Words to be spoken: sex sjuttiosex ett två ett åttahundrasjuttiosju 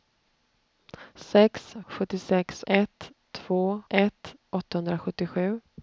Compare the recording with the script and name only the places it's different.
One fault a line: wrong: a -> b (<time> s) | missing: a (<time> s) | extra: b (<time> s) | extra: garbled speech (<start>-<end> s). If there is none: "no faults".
no faults